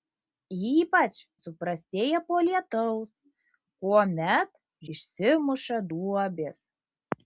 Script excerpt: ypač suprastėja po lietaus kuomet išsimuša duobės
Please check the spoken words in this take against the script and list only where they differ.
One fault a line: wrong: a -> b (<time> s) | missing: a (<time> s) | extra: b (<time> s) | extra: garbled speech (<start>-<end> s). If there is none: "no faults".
no faults